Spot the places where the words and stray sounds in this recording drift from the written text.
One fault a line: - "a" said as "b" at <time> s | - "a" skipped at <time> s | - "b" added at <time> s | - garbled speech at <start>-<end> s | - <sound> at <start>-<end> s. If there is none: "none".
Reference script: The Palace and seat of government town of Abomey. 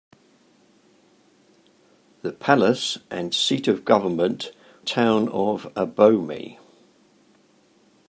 none